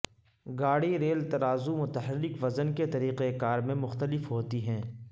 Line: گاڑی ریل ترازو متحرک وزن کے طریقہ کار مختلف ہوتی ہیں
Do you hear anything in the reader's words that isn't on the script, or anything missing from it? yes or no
yes